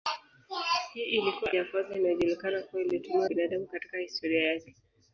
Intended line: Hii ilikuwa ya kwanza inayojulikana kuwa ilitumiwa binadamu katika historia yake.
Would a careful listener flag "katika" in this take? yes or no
no